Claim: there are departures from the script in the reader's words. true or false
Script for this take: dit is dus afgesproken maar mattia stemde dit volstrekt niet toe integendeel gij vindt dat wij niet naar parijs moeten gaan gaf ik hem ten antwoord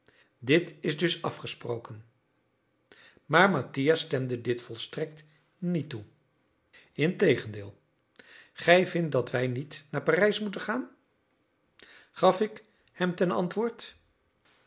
false